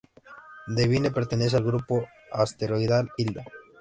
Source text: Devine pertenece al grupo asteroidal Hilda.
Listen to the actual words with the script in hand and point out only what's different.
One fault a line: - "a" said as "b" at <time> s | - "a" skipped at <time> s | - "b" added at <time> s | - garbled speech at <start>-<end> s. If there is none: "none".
none